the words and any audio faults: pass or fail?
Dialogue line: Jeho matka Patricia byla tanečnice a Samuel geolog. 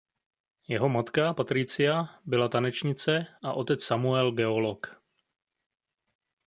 fail